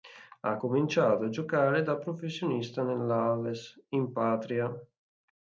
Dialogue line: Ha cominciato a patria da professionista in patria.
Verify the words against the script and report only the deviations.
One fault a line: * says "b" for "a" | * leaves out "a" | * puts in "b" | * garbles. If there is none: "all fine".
* says "giocare" for "patria"
* puts in "nell'Aves"